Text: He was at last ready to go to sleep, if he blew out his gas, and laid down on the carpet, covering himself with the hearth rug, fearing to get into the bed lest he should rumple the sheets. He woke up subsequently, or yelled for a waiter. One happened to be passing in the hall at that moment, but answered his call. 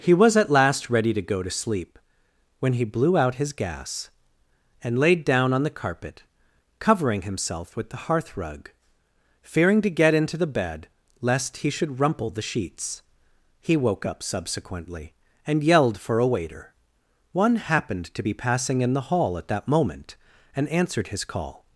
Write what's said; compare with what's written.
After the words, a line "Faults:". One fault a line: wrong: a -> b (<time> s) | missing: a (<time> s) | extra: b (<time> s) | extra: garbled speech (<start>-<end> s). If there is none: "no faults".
He was at last ready to go to sleep, when he blew out his gas, and laid down on the carpet, covering himself with the hearth rug, fearing to get into the bed lest he should rumple the sheets. He woke up subsequently, and yelled for a waiter. One happened to be passing in the hall at that moment, and answered his call.
Faults:
wrong: if -> when (2.6 s)
wrong: or -> and (15.4 s)
wrong: but -> and (20.5 s)